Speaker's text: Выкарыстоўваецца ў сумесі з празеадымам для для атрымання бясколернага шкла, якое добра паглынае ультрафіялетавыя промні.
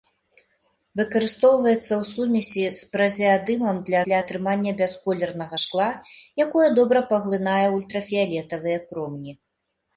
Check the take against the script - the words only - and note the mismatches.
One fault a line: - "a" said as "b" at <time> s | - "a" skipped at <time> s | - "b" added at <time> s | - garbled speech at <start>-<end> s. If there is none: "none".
none